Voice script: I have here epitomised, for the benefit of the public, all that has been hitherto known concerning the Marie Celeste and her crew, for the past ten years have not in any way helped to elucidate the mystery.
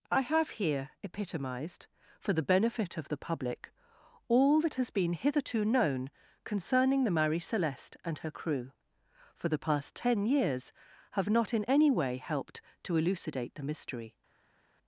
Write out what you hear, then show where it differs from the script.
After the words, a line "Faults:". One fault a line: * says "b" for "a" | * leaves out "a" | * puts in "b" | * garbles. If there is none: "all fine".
I have here epitomised, for the benefit of the public, all that has been hitherto known concerning the Marie Celeste and her crew, for the past ten years have not in any way helped to elucidate the mystery.
Faults:
all fine